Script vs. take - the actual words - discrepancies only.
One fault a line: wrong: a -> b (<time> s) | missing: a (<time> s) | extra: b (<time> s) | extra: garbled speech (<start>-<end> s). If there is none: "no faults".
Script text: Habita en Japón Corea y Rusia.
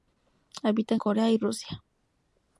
missing: Japón (1.0 s)